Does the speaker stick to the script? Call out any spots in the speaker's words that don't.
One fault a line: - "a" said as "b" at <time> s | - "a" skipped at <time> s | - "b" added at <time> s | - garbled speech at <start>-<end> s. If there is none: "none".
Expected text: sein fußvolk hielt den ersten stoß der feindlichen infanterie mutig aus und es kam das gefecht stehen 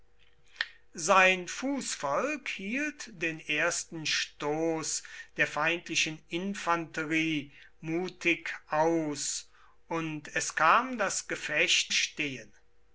none